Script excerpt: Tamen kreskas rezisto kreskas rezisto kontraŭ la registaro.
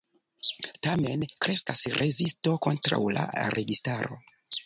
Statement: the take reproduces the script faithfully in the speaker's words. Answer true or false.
false